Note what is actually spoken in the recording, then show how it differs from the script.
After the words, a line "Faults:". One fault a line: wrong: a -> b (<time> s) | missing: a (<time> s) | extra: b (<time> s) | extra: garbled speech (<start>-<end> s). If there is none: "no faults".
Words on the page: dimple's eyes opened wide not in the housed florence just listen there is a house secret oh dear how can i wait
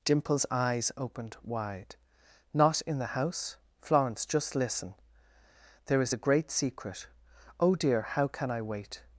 dimple's eyes opened wide not in the house florence just listen there is a great secret oh dear how can i wait
Faults:
wrong: housed -> house (3.2 s)
wrong: house -> great (6.2 s)